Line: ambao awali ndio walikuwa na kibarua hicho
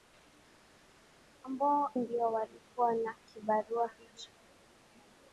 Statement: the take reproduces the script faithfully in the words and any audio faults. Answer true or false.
false